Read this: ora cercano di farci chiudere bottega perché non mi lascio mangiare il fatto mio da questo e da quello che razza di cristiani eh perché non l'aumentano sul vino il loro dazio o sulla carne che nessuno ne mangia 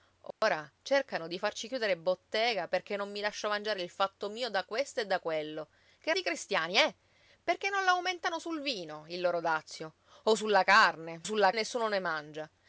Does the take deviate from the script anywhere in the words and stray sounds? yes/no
yes